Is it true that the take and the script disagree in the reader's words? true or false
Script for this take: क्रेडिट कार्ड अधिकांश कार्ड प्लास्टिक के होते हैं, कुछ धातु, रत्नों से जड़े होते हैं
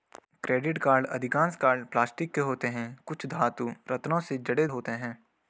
false